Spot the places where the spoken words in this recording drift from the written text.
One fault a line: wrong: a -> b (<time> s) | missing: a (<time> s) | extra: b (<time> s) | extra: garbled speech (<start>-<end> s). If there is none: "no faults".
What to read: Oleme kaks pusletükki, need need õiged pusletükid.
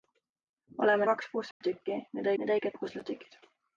no faults